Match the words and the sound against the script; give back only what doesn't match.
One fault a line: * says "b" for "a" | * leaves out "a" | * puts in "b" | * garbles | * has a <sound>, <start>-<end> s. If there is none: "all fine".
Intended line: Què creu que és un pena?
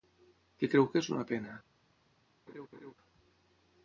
* says "una" for "un"
* has a laugh, 2.5-2.9 s